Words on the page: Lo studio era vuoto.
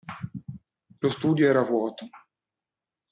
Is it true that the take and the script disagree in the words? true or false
false